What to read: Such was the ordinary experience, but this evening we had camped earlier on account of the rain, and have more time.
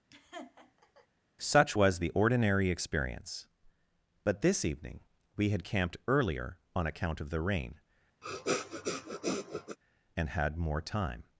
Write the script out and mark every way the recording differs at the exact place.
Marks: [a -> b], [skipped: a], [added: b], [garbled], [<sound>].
[laugh] Such was the ordinary experience, but this evening we had camped earlier on account of the rain, [sniff] and [have -> had] more time.